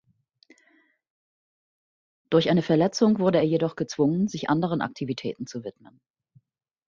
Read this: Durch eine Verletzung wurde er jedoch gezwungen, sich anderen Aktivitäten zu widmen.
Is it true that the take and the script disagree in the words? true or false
false